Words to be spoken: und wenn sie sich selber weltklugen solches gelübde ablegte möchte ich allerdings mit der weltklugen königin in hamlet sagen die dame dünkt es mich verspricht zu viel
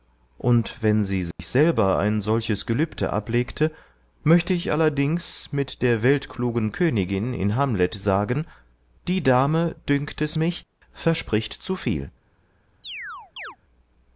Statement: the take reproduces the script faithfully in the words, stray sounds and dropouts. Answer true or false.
false